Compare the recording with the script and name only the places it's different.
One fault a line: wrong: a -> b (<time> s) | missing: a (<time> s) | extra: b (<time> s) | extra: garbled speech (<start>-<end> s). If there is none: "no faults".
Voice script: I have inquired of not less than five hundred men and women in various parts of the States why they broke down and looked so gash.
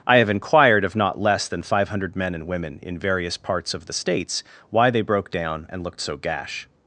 no faults